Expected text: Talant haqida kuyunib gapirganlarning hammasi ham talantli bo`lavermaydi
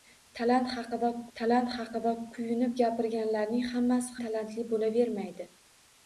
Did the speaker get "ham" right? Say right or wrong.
wrong